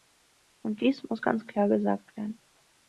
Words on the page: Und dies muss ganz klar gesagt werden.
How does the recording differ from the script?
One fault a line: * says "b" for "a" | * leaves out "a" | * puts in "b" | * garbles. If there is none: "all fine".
all fine